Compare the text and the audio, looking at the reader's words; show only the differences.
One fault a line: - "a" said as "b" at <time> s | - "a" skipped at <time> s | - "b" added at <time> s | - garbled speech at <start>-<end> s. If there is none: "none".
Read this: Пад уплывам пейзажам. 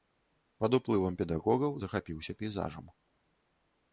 - "педагогаў захапіўся" added at 1.2 s